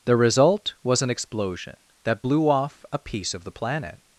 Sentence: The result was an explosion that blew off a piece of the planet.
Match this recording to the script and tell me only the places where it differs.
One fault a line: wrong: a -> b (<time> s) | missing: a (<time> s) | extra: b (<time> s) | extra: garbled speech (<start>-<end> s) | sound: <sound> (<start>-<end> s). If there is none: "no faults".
no faults